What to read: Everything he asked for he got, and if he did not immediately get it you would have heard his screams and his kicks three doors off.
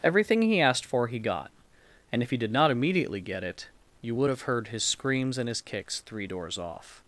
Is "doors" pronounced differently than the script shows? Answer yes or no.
no